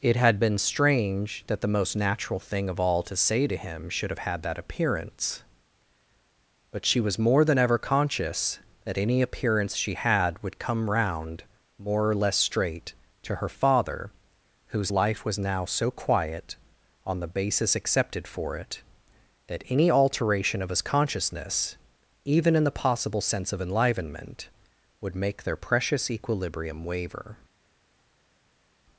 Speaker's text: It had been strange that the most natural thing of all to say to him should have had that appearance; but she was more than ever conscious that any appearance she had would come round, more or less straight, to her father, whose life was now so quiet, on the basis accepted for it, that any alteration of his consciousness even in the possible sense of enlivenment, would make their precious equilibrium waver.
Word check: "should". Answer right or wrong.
right